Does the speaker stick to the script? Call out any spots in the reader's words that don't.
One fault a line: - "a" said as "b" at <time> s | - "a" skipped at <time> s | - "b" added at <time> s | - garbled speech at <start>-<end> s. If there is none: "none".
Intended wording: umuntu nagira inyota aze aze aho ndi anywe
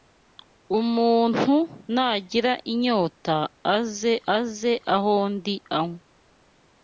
none